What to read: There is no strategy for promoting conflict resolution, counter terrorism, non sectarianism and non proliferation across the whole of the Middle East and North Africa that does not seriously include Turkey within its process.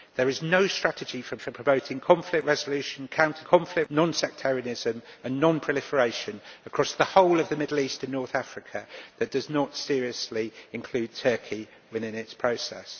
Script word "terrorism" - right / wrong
wrong